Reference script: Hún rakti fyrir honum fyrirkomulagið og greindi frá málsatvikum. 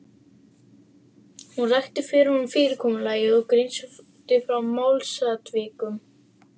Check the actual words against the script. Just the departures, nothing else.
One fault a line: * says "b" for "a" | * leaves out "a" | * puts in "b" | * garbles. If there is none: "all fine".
all fine